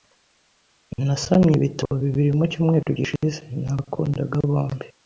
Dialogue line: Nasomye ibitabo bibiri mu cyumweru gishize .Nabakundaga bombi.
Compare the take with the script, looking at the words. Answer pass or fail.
pass